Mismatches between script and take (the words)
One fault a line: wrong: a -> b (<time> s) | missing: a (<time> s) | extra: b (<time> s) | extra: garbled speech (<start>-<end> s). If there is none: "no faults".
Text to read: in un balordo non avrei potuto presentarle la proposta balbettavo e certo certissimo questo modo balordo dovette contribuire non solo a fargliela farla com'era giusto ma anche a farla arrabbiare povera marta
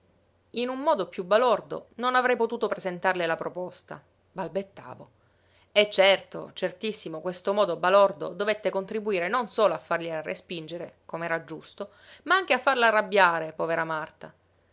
extra: modo piú (0.8 s)
wrong: farla -> respingere (10.2 s)